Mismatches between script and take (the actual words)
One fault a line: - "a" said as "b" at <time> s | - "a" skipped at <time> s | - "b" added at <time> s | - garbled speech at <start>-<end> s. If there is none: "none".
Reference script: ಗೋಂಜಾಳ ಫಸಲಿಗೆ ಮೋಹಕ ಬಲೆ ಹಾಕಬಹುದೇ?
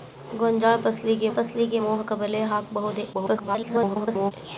- "ಫಸಲಿಗೆ" added at 1.3 s
- garbled speech at 3.1-4.3 s